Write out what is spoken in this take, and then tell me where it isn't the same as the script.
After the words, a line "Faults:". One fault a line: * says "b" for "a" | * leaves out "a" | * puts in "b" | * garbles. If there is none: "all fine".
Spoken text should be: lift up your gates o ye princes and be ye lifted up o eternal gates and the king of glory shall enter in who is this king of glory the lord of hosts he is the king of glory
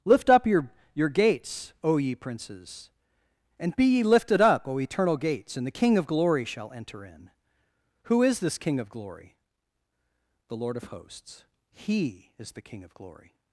lift up your your gates o ye princes and be ye lifted up o eternal gates and the king of glory shall enter in who is this king of glory the lord of hosts he is the king of glory
Faults:
* puts in "your"